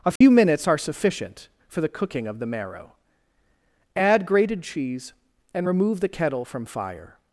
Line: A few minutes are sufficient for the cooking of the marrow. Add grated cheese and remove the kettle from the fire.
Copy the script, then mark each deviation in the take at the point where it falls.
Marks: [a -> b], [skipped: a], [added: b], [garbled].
A few minutes are sufficient for the cooking of the marrow. Add grated cheese and remove the kettle from [skipped: the] fire.